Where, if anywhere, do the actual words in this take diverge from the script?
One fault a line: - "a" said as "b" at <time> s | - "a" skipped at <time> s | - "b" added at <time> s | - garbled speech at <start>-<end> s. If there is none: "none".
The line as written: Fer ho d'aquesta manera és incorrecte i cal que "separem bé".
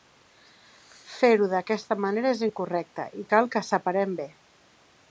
none